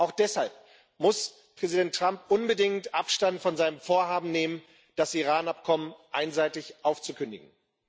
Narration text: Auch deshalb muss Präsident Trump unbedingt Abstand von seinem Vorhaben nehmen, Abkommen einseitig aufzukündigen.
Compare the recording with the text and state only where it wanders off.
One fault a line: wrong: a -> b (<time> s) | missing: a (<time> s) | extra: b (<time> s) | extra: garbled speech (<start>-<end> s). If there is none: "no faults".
extra: das Iran (4.9 s)